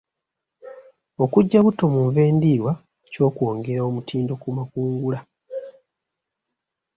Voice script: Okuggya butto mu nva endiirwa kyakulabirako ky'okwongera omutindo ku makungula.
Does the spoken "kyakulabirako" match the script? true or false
false